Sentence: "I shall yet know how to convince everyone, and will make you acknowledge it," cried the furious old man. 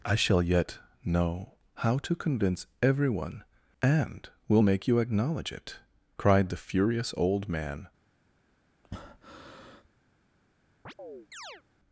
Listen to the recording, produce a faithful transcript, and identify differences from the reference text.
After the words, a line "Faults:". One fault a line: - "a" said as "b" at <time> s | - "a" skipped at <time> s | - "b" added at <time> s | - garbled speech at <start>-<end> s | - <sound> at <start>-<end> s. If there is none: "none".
"I shall yet know how to convince everyone, and will make you acknowledge it," cried the furious old man.
Faults:
- breath at 8.8-9.9 s
- chirp at 10.8-11.6 s